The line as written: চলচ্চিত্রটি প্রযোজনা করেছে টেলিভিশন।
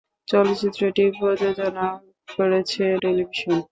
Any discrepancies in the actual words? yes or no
no